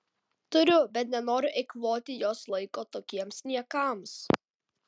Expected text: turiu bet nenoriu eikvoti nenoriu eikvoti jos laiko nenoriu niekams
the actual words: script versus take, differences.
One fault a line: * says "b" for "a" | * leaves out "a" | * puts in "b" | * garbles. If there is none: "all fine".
* leaves out "nenoriu eikvoti"
* says "tokiems" for "nenoriu"